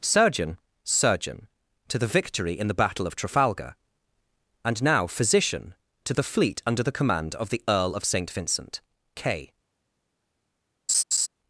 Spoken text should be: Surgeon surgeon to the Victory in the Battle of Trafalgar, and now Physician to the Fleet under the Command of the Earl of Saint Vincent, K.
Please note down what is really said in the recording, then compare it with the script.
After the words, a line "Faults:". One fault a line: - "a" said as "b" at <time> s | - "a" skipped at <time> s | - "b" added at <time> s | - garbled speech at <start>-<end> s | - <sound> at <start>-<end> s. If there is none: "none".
Surgeon surgeon to the Victory in the Battle of Trafalgar, and now Physician to the Fleet under the Command of the Earl of Saint Vincent, K.
Faults:
- laugh at 10.9-11.3 s